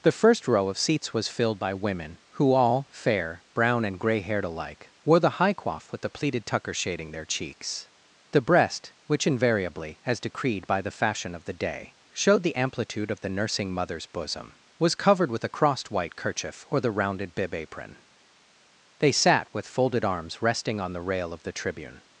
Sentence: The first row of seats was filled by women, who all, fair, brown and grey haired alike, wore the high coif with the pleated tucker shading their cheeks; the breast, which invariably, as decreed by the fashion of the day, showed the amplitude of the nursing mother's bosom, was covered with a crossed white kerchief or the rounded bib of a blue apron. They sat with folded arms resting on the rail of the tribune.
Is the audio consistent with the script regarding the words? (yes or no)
no